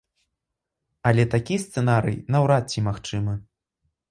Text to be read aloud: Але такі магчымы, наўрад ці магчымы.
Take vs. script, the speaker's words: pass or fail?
fail